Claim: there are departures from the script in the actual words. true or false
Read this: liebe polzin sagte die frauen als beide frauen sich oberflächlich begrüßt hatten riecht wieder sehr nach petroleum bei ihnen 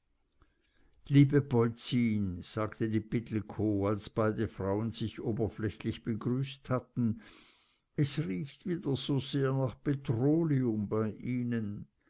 true